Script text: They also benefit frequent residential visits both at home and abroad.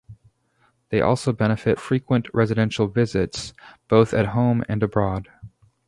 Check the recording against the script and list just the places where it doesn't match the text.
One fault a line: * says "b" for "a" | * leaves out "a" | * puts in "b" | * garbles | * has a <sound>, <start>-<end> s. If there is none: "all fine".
all fine